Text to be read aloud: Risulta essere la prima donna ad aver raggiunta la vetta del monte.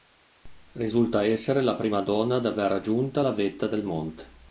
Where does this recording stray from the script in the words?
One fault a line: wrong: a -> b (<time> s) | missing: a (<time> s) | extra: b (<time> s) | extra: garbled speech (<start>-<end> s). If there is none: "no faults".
no faults